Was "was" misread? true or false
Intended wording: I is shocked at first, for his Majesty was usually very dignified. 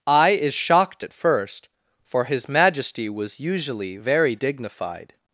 false